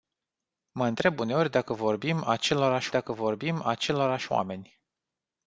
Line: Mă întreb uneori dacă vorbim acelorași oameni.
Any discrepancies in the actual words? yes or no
yes